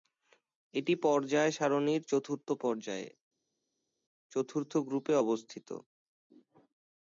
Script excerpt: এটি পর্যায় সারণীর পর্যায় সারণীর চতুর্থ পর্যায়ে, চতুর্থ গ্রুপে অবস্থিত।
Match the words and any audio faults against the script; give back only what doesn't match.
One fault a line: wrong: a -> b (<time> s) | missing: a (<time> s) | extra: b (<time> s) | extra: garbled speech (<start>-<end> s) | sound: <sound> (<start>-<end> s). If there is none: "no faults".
missing: পর্যায় সারণীর (2.0 s)